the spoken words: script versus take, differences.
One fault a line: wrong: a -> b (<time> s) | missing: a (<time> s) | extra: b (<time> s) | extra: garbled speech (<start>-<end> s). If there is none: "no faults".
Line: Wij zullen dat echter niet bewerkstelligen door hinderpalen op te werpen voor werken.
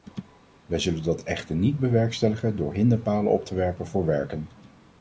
no faults